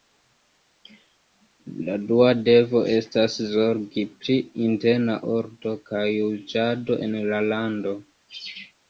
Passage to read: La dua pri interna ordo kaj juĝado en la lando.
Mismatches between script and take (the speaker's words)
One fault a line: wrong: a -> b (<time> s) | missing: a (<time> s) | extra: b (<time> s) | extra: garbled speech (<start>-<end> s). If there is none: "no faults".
extra: devo estas zorgi (2.5 s)